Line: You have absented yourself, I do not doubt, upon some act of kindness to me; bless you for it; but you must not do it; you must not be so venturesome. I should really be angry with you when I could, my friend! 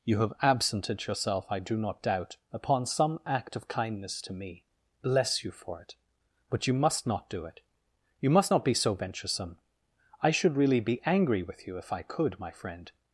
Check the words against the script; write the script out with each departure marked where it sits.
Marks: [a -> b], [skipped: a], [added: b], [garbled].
You have absented yourself, I do not doubt, upon some act of kindness to me; bless you for it; but you must not do it; you must not be so venturesome. I should really be angry with you [when -> if] I could, my friend!